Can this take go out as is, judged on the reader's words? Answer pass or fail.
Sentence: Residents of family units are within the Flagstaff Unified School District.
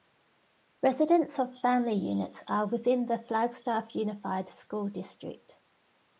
pass